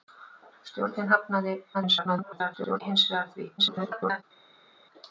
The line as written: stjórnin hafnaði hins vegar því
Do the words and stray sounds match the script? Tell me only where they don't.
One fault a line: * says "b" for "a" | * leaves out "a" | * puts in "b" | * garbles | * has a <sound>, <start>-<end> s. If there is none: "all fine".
* garbles
* garbles